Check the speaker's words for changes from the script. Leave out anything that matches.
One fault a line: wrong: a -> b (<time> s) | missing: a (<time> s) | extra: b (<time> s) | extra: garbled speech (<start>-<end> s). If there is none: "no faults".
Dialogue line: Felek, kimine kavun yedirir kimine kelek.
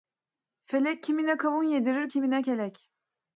no faults